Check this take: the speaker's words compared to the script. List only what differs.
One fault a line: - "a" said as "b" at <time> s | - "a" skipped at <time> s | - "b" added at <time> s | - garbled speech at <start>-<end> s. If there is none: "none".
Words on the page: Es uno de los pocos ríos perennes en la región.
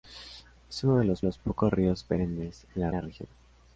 - "los" added at 1.2 s
- "la" added at 2.9 s